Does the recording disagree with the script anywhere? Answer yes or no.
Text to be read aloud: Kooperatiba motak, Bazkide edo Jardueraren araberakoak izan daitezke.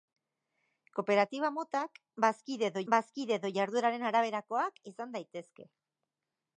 yes